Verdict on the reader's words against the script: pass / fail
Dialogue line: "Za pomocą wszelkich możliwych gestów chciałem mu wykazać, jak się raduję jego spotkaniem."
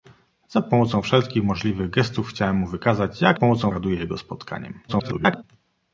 fail